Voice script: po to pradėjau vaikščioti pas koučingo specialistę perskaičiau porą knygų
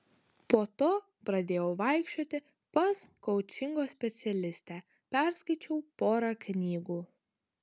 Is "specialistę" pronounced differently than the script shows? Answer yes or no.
no